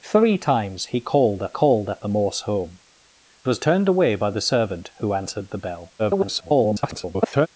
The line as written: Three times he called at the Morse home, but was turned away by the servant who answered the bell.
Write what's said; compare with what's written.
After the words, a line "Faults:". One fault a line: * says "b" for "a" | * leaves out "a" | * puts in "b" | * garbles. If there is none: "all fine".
Three times he called at called at the Morse home, was turned away by the servant who answered the bell. [garbled]
Faults:
* puts in "called at"
* leaves out "but"
* garbles